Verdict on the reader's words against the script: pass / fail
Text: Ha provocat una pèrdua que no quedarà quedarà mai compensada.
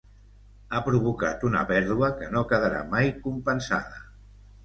fail